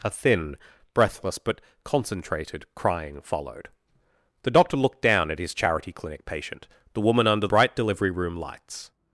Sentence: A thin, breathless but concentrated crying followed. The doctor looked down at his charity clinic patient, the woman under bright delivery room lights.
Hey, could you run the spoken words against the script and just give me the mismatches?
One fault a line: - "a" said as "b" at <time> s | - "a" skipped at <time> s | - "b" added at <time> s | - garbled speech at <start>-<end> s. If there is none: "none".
none